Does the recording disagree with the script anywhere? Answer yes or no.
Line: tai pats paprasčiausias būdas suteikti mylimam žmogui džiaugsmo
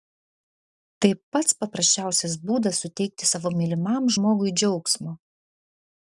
yes